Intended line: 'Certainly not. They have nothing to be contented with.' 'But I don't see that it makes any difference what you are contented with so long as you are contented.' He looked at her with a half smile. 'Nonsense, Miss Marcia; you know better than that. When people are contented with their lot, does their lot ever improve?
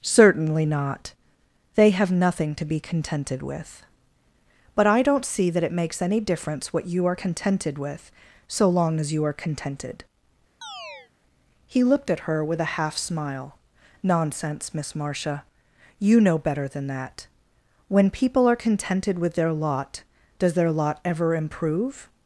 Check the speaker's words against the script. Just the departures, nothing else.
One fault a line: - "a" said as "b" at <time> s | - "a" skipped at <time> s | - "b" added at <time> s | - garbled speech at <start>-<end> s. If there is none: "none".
none